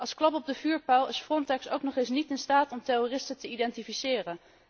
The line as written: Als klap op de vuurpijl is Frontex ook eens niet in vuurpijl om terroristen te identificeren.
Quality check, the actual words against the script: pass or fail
fail